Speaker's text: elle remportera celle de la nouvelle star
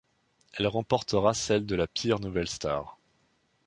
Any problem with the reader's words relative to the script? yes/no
yes